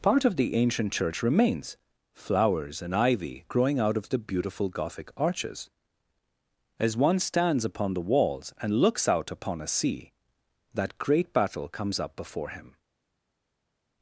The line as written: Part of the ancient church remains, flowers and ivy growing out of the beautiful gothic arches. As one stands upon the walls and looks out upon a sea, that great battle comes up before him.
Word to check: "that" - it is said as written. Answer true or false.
true